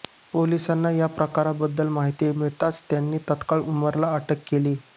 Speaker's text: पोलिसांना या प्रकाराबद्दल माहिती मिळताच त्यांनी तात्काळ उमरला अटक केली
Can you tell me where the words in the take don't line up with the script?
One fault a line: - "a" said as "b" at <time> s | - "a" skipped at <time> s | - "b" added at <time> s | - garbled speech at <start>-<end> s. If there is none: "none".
none